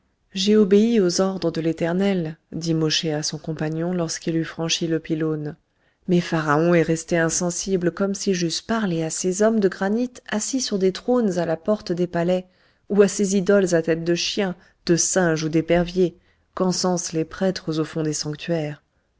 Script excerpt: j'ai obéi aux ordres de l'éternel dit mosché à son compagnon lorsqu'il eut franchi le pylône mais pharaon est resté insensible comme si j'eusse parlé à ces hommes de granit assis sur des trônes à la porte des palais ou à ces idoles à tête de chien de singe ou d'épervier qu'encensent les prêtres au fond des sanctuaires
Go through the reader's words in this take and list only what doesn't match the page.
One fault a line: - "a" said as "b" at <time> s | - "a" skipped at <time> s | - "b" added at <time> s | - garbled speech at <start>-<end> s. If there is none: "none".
none